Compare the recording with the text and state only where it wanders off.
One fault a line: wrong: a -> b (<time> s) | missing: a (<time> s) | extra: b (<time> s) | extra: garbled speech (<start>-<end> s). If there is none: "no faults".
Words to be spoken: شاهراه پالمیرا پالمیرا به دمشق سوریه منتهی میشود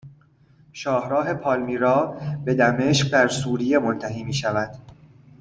missing: پالمیرا (2.2 s)
extra: در (3.1 s)